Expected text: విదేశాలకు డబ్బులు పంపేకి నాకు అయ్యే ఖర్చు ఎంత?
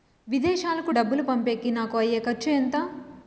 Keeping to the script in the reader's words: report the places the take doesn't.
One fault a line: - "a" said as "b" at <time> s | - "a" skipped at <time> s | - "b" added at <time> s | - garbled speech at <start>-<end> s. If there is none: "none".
none